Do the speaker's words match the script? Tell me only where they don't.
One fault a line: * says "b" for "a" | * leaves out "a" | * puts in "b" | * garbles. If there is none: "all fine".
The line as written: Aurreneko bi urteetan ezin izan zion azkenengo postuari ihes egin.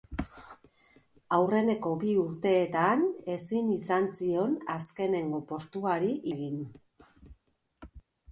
* leaves out "ihes"